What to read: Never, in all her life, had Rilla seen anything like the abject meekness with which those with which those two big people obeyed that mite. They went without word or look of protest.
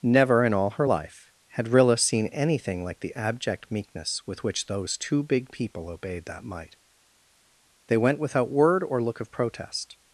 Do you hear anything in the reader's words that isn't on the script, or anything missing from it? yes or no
yes